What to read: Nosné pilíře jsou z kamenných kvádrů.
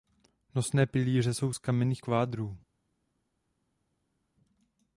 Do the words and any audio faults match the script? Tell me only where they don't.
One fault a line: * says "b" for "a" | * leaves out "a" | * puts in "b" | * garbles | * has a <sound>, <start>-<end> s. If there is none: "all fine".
all fine